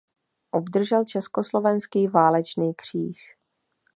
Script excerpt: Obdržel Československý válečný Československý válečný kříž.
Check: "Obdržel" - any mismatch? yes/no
no